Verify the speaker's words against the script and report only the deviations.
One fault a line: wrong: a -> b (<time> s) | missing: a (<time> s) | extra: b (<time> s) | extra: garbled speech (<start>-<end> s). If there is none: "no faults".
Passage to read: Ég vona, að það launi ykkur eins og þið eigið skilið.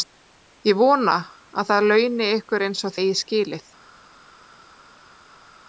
missing: þið (3.0 s)